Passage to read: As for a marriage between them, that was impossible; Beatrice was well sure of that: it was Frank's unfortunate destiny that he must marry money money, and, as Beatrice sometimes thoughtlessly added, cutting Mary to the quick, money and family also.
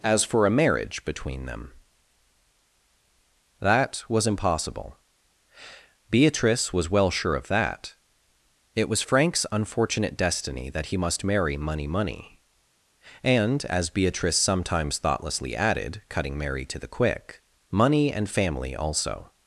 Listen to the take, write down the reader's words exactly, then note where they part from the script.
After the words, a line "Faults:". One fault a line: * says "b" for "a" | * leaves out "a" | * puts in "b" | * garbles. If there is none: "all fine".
As for a marriage between them, that was impossible; Beatrice was well sure of that: it was Frank's unfortunate destiny that he must marry money money, and, as Beatrice sometimes thoughtlessly added, cutting Mary to the quick, money and family also.
Faults:
all fine